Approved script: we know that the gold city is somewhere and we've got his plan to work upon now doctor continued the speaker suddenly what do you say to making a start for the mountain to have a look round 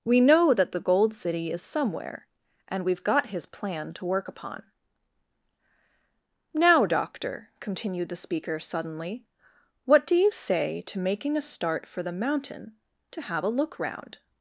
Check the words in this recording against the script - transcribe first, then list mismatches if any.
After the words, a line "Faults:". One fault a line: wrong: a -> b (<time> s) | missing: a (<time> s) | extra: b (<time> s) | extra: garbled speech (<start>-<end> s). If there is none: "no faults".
we know that the gold city is somewhere and we've got his plan to work upon now doctor continued the speaker suddenly what do you say to making a start for the mountain to have a look round
Faults:
no faults